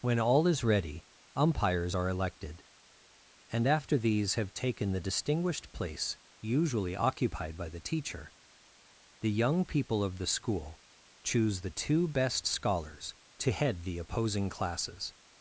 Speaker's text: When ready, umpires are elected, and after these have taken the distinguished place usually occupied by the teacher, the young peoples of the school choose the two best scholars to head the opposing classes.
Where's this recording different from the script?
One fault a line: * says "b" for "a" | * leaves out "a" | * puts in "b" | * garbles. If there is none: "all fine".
* puts in "all is"
* says "people" for "peoples"